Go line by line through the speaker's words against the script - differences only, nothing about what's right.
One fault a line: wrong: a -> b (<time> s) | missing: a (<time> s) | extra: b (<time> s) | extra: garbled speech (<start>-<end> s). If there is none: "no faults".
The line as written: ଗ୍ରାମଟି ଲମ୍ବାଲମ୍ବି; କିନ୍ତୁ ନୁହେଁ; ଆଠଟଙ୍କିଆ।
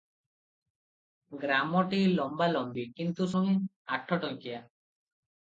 no faults